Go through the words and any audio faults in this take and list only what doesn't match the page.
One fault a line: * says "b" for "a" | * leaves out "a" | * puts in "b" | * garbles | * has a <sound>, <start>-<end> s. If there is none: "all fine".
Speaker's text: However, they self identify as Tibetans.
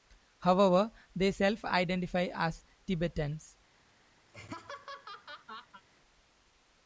* has a laugh, 4.3-5.8 s